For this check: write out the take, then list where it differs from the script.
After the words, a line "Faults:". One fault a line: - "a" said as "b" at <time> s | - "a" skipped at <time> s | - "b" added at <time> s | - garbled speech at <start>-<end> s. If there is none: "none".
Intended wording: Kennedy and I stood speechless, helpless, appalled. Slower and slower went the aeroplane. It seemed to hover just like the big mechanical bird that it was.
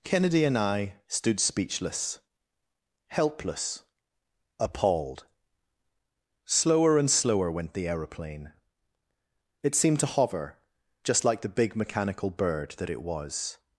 Kennedy and I stood speechless, helpless, appalled. Slower and slower went the aeroplane. It seemed to hover just like the big mechanical bird that it was.
Faults:
none